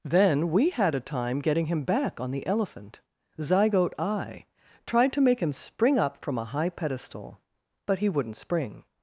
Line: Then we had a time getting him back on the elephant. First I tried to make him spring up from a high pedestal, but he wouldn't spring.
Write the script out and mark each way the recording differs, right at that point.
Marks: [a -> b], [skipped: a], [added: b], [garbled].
Then we had a time getting him back on the elephant. [First -> Zygote] I tried to make him spring up from a high pedestal, but he wouldn't spring.